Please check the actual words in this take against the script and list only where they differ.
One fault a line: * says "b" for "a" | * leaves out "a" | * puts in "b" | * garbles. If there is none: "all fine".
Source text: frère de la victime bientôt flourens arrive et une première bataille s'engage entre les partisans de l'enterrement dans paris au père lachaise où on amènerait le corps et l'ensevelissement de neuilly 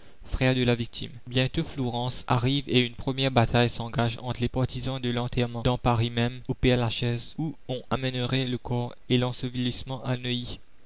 * puts in "même"
* says "à" for "de"